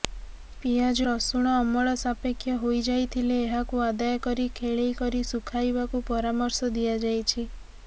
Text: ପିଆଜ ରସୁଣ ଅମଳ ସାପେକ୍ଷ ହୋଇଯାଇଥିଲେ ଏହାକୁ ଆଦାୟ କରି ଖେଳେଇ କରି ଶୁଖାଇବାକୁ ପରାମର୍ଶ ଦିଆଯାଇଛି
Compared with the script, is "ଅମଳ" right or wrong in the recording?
right